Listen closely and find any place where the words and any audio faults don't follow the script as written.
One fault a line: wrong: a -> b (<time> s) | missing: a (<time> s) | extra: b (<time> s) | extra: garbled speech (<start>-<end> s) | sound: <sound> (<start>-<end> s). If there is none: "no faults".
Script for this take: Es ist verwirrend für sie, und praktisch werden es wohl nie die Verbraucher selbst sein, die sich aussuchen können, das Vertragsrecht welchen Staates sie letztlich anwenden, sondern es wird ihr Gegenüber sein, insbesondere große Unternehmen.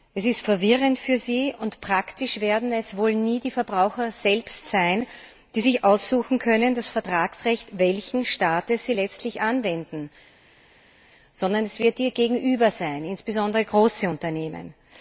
no faults